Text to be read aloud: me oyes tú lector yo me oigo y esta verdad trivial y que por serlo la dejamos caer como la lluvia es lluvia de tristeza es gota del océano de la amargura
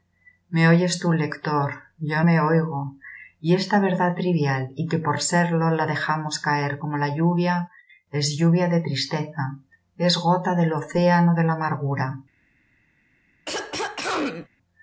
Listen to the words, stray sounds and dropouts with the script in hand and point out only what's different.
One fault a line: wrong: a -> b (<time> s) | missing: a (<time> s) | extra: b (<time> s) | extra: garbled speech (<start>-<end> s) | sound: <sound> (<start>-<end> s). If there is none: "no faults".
sound: throat clearing (13.5-14.5 s)